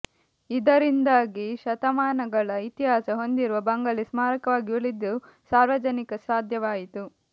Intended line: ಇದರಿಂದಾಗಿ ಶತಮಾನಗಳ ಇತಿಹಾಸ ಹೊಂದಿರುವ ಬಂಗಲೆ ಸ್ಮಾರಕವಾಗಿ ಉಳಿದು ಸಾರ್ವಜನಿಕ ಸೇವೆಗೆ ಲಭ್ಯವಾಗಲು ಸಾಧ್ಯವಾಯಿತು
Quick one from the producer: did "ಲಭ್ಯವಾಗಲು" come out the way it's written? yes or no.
no